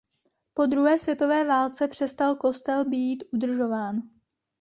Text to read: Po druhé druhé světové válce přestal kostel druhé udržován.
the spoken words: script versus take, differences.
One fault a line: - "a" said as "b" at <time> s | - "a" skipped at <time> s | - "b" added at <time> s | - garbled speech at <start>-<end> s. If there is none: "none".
- "druhé" skipped at 1.0 s
- "druhé" said as "být" at 2.9 s